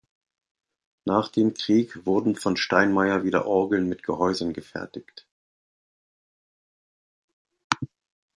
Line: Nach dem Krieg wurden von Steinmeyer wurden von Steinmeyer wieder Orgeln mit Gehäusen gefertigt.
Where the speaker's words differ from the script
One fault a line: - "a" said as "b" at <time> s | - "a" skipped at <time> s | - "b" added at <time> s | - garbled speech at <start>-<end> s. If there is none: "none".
- "wurden von Steinmeyer" skipped at 3.2 s